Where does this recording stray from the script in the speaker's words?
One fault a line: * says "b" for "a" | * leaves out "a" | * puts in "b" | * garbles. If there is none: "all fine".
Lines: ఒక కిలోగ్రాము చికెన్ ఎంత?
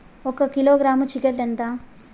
all fine